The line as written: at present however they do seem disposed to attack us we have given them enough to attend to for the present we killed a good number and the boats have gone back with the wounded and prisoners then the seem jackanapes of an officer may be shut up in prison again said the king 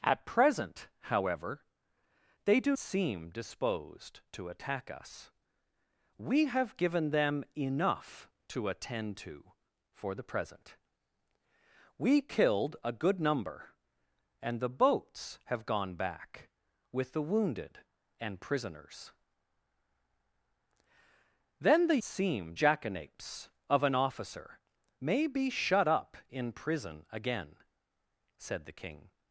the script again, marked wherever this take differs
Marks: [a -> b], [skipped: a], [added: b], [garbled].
at present however they do seem disposed to attack us we have given them enough to attend to for the present we killed a good number and the boats have gone back with the wounded and prisoners then the seem jackanapes of an officer may be shut up in prison again said the king